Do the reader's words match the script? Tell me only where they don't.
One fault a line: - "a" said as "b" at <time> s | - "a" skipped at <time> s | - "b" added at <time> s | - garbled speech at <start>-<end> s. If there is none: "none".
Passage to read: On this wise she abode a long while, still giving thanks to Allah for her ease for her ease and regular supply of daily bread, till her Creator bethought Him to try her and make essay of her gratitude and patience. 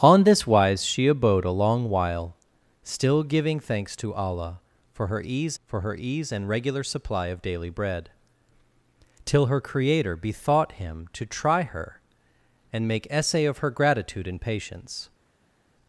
none